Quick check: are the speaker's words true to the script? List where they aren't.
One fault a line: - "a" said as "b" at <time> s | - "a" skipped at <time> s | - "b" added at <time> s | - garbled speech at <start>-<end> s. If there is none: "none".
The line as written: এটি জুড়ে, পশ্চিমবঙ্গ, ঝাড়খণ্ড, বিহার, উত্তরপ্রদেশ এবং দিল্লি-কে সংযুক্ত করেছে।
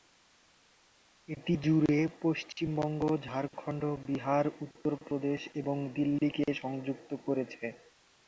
none